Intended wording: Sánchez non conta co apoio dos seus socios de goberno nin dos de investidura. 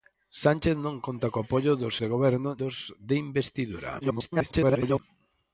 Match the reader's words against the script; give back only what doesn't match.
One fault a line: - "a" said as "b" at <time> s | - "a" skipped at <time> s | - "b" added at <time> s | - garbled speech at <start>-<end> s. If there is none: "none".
- "seus socios" skipped at 1.9 s
- "nin" skipped at 2.5 s
- garbled speech at 4.0-5.0 s